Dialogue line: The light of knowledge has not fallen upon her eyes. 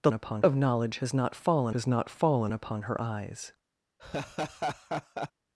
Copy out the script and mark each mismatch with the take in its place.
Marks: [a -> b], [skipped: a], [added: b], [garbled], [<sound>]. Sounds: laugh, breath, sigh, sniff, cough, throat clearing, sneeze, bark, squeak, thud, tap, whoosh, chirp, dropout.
The [light -> upon] of knowledge has not fallen [added: has not fallen] upon her eyes. [laugh]